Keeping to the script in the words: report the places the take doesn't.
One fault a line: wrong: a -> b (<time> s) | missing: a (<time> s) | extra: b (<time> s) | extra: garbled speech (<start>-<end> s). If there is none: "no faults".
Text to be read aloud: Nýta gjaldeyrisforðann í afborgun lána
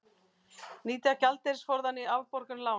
no faults